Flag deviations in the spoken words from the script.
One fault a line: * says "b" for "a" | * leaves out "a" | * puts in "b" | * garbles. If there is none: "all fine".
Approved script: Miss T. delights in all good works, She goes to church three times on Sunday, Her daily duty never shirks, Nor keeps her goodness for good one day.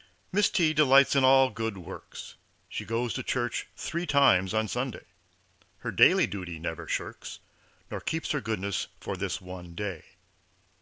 * says "this" for "good"